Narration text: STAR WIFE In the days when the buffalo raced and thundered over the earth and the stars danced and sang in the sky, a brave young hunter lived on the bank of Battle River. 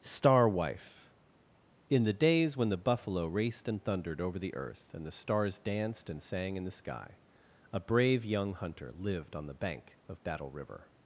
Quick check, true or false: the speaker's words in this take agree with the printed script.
true